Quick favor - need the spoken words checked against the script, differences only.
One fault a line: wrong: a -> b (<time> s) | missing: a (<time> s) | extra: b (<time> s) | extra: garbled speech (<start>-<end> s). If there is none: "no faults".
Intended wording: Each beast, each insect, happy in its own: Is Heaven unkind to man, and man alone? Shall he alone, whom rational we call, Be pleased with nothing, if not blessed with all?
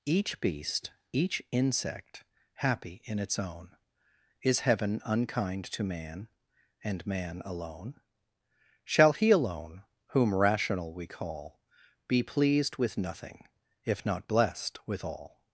no faults